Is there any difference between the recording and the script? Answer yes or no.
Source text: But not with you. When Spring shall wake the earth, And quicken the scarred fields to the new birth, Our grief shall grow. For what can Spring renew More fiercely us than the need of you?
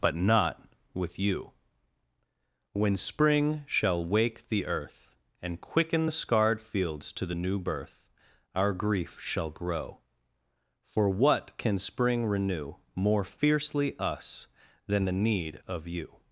no